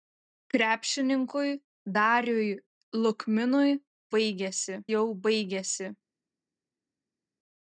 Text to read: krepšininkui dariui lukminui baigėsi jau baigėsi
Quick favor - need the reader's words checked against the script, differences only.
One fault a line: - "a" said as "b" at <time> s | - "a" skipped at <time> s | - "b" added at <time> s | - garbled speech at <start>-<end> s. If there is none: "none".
none